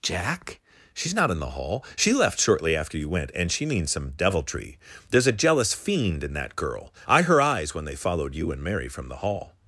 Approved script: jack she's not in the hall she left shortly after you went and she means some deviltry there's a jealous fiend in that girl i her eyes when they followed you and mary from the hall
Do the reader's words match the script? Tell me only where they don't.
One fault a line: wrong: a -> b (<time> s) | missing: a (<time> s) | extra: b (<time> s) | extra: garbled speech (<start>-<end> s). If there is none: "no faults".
no faults